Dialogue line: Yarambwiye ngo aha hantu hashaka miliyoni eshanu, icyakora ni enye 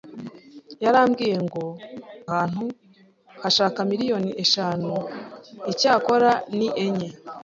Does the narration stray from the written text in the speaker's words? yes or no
yes